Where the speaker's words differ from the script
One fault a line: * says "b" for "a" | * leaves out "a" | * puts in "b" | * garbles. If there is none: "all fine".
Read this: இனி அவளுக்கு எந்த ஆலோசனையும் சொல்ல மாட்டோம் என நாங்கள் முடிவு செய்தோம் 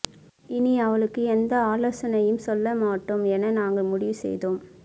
all fine